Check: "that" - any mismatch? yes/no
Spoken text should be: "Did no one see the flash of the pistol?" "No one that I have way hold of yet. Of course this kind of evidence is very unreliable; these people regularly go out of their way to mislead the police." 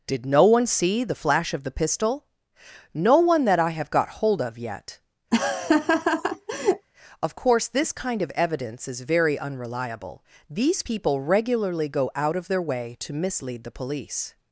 no